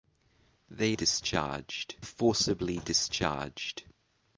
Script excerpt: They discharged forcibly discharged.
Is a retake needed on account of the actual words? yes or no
no